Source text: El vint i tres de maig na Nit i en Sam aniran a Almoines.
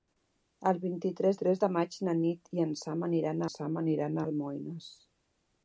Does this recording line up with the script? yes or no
no